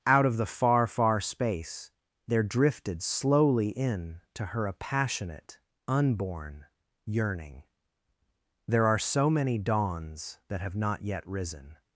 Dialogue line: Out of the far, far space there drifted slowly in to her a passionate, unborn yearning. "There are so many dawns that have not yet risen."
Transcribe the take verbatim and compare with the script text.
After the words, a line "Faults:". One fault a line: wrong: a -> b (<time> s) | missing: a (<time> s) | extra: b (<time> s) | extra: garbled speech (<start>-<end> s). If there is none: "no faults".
Out of the far, far space there drifted slowly in to her a passionate, unborn yearning. "There are so many dawns that have not yet risen."
Faults:
no faults